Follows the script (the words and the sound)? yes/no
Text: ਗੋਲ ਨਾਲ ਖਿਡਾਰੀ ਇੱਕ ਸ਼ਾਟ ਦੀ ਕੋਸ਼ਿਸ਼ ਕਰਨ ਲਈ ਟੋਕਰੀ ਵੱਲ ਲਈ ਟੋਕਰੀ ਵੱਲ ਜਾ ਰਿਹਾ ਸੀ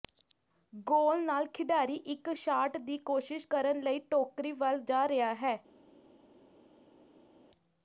no